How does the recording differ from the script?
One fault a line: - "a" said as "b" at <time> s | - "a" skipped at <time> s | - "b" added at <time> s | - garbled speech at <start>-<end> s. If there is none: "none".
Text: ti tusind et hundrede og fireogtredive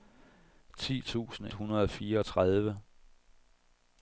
- "et" skipped at 1.5 s